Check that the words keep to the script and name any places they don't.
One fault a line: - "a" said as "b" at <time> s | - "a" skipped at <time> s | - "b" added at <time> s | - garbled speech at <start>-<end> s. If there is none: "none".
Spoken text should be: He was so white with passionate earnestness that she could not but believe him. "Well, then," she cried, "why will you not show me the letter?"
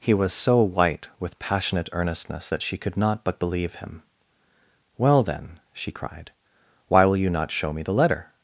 none